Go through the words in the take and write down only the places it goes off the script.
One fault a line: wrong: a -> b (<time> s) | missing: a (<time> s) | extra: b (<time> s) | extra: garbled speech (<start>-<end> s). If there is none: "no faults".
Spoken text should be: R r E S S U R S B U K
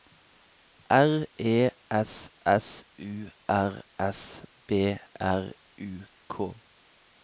missing: r (1.3 s)
extra: R (5.2 s)